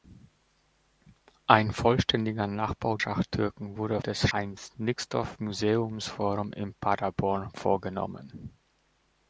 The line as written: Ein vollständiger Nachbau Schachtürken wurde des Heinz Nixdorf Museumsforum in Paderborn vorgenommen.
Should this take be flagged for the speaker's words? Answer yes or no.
no